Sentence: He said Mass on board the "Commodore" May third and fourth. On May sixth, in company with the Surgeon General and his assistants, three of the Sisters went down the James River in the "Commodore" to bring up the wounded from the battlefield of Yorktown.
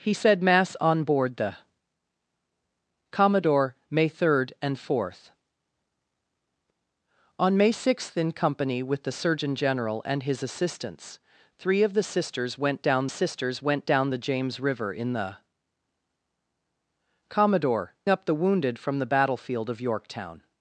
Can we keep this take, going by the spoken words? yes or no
no